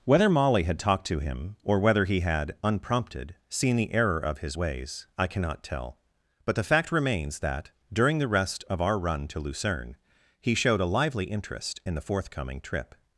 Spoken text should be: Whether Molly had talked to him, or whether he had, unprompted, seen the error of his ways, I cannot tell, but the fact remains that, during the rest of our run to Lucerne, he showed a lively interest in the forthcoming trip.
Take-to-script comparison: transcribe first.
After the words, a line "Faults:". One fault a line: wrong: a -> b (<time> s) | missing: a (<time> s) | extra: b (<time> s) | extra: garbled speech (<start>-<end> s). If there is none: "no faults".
Whether Molly had talked to him, or whether he had, unprompted, seen the error of his ways, I cannot tell, but the fact remains that, during the rest of our run to Lucerne, he showed a lively interest in the forthcoming trip.
Faults:
no faults